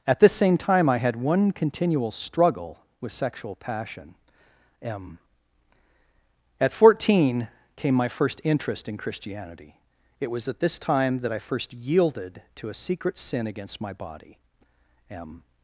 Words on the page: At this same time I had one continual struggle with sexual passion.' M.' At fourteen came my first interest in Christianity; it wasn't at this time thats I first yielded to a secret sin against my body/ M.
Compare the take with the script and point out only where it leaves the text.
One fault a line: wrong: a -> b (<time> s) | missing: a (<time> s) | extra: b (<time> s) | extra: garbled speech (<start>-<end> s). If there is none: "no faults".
wrong: wasn't -> was (10.3 s)
wrong: thats -> that (11.2 s)